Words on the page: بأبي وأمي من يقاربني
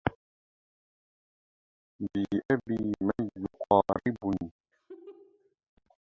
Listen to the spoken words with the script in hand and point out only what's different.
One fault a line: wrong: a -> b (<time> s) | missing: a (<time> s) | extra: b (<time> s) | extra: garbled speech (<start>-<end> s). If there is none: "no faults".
missing: وأمي (2.9 s)